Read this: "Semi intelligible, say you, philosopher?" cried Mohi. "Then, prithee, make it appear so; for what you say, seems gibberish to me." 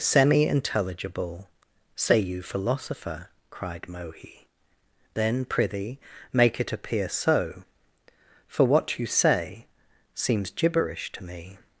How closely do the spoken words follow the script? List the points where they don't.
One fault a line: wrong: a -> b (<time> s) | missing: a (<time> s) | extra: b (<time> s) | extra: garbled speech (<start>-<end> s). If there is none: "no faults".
no faults